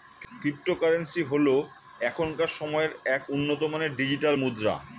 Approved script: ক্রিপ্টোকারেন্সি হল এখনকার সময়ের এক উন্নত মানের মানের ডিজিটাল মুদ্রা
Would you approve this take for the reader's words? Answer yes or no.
no